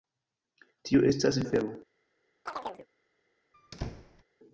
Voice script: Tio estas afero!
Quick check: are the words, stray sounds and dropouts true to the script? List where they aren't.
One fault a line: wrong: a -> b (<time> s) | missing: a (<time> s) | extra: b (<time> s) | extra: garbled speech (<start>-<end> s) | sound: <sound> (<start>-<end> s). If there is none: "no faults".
sound: chirp (2.5-2.9 s)
sound: squeak (3.5-4.2 s)